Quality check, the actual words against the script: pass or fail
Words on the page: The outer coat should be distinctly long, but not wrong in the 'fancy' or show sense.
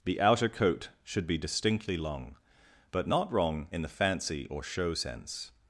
pass